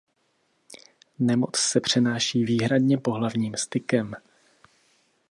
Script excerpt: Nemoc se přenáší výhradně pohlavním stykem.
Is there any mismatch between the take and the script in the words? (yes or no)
no